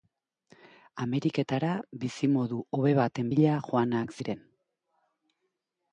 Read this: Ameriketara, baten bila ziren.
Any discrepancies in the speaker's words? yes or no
yes